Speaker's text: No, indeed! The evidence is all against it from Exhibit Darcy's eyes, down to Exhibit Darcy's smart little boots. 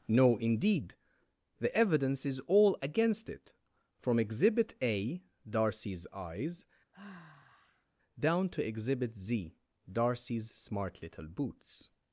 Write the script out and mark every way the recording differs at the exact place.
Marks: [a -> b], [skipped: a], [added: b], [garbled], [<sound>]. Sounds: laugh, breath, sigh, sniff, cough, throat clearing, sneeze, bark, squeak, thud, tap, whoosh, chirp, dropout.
No, indeed! The evidence is all against it from Exhibit [added: A] Darcy's eyes, [sigh] down to Exhibit [added: Z] Darcy's smart little boots.